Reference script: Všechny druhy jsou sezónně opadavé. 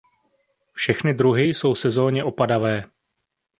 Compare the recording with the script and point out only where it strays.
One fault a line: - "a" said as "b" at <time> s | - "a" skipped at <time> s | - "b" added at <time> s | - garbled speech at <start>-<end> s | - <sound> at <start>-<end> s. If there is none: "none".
none